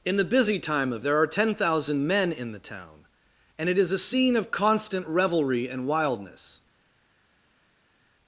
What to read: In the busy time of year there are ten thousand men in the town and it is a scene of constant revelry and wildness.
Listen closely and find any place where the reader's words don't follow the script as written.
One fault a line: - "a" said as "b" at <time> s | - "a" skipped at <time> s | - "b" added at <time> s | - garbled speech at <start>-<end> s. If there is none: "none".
- "year" skipped at 1.1 s